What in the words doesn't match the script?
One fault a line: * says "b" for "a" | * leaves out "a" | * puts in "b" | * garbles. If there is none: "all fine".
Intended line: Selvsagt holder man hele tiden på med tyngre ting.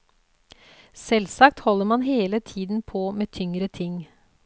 all fine